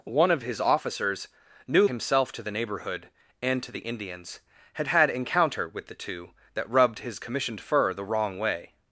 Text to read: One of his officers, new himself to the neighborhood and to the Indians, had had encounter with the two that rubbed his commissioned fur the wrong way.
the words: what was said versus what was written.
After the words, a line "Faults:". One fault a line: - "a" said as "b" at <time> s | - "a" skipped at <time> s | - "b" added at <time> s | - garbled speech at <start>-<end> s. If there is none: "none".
One of his officers, new himself to the neighborhood and to the Indians, had had encounter with the two that rubbed his commissioned fur the wrong way.
Faults:
none